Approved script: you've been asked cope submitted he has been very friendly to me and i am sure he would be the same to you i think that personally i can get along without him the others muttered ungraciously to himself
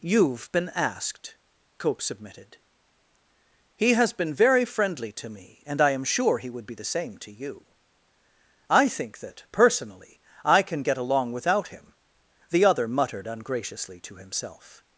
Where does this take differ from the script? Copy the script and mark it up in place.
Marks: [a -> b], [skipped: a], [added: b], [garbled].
you've been asked cope submitted he has been very friendly to me and i am sure he would be the same to you i think that personally i can get along without him the [others -> other] muttered ungraciously to himself